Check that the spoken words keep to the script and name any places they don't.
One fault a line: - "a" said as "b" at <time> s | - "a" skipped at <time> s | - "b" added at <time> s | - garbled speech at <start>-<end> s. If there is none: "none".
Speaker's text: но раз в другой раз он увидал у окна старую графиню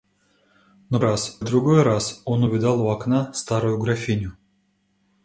none